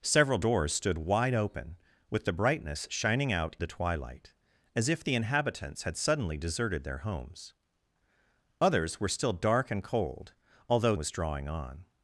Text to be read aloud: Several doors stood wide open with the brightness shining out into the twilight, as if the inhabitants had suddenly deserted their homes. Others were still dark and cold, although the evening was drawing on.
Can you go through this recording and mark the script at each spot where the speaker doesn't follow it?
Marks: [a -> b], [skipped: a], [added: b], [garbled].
Several doors stood wide open with the brightness shining out [skipped: into] the twilight, as if the inhabitants had suddenly deserted their homes. Others were still dark and cold, although [skipped: the evening] was drawing on.